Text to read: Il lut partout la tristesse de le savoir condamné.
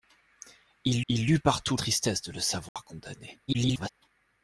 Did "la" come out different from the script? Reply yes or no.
yes